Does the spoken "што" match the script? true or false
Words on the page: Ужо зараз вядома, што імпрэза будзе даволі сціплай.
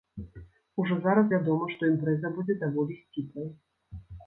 true